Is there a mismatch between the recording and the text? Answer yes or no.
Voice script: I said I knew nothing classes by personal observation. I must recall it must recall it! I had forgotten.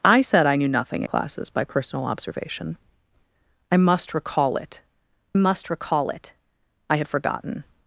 no